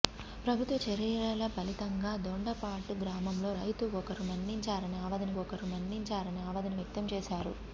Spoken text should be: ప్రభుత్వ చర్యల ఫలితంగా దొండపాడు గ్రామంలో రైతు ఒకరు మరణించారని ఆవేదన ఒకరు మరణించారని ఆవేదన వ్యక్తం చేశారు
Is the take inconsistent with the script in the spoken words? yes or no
no